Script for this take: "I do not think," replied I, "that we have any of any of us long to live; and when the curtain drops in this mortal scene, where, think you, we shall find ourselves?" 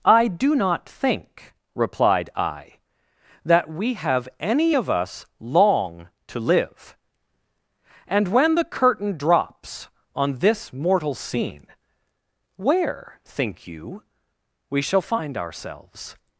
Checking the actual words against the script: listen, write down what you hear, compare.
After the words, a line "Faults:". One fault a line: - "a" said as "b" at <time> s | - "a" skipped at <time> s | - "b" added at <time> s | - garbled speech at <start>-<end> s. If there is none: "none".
"I do not think," replied I, "that we have any of us long to live; and when the curtain drops on this mortal scene, where, think you, we shall find ourselves?"
Faults:
- "any of" skipped at 4.9 s
- "in" said as "on" at 10.1 s